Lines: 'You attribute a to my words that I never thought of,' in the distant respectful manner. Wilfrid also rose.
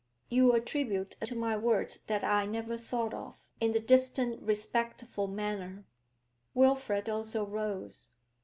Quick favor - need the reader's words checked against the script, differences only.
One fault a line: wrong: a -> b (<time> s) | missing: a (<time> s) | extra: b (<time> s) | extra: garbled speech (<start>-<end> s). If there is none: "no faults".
no faults